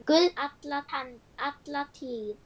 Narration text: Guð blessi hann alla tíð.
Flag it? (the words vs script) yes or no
yes